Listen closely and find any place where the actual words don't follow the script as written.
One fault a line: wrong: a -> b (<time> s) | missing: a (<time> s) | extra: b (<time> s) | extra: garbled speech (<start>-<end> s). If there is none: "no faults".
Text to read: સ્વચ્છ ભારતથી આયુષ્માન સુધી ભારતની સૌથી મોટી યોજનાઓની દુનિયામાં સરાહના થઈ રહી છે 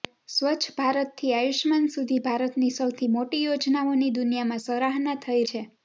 missing: રહી (5.4 s)